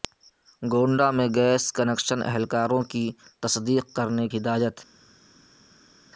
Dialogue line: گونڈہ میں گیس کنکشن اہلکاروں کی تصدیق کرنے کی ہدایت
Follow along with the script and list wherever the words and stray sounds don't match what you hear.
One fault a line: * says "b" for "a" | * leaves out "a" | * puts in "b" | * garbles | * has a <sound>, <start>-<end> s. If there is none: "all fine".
* leaves out "کی"